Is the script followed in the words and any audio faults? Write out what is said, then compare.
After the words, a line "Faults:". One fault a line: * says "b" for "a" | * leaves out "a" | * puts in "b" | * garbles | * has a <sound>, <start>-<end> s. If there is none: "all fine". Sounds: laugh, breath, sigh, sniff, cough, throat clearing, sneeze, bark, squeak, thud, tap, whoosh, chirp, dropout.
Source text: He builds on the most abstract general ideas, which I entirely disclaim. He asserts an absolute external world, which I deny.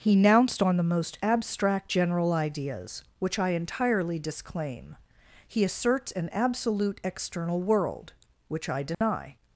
He nounced on the most abstract general ideas, which I entirely disclaim. He asserts an absolute external world, which I deny.
Faults:
* says "nounced" for "builds"
* has a dropout, 8.9-9.0 s